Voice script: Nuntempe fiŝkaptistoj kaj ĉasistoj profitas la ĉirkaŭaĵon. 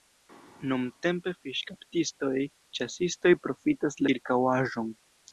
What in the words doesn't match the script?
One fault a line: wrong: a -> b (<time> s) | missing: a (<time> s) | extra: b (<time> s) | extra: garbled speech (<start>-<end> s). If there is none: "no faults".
missing: kaj (2.3 s)
missing: la (4.0 s)